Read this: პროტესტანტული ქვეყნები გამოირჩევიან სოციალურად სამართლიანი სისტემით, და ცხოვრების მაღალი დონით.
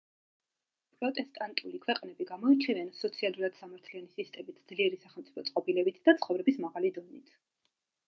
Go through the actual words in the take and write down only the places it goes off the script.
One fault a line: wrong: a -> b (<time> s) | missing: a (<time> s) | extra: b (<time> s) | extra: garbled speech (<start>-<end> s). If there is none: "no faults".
extra: ძლიერი სახელმწიფო წყობილებით (4.7 s)